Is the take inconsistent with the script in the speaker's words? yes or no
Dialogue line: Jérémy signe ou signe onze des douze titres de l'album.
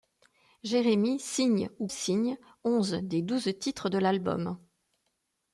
no